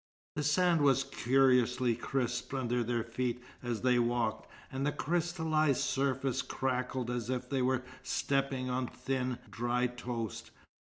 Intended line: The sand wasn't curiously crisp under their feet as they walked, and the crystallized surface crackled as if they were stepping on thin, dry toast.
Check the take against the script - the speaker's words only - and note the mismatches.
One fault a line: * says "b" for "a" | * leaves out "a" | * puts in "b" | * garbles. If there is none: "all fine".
* says "was" for "wasn't"